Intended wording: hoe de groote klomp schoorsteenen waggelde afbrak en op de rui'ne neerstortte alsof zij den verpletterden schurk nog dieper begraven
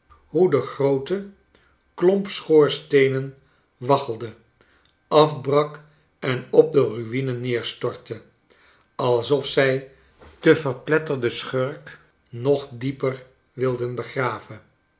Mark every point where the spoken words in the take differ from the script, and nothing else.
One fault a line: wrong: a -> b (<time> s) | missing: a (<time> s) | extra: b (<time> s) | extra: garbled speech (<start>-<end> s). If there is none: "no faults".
extra: wilden (13.5 s)